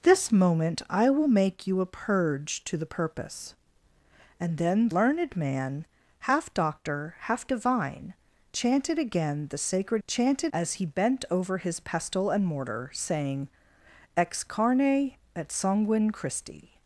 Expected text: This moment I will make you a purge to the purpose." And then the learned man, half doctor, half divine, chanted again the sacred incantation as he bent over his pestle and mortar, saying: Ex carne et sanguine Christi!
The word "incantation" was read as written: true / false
false